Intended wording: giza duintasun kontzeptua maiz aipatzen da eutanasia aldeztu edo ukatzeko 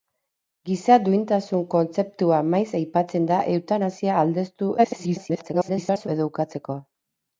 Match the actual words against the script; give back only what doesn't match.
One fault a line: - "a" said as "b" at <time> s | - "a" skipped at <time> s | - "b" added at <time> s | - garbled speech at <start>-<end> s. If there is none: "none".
- garbled speech at 4.8-6.1 s